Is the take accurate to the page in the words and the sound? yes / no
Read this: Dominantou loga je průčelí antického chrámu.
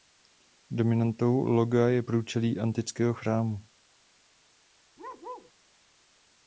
no